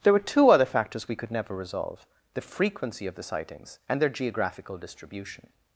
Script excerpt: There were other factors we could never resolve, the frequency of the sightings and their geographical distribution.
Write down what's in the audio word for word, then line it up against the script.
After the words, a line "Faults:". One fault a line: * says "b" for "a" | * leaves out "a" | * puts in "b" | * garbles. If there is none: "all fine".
There were two other factors we could never resolve, the frequency of the sightings and their geographical distribution.
Faults:
* puts in "two"